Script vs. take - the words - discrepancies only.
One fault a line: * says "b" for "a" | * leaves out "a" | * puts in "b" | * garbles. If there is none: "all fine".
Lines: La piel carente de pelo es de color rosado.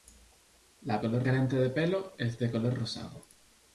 * says "color" for "piel"